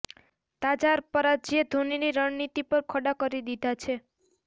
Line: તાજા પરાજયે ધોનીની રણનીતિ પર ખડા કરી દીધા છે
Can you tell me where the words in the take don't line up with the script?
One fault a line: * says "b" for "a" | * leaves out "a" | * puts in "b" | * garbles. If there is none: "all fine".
all fine